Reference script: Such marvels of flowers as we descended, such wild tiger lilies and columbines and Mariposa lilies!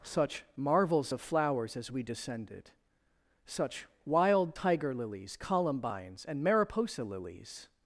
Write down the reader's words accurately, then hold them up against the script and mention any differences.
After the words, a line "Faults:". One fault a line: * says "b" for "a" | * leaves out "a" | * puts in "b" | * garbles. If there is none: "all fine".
Such marvels of flowers as we descended, such wild tiger lilies columbines and Mariposa lilies!
Faults:
* leaves out "and"